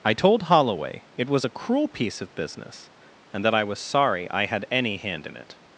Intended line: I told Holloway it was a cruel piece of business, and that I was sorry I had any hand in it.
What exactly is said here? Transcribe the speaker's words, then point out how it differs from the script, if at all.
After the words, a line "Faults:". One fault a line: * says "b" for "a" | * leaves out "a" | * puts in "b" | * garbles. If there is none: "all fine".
I told Holloway it was a cruel piece of business, and that I was sorry I had any hand in it.
Faults:
all fine